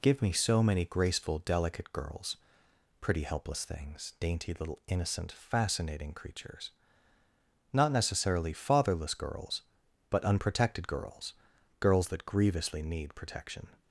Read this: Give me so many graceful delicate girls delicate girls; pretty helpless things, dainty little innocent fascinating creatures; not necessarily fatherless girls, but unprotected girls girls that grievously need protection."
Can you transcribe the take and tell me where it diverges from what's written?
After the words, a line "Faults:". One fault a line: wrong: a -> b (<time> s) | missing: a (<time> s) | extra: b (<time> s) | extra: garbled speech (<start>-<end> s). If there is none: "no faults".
Give me so many graceful delicate girls; pretty helpless things, dainty little innocent fascinating creatures; not necessarily fatherless girls, but unprotected girls girls that grievously need protection."
Faults:
missing: delicate girls (2.4 s)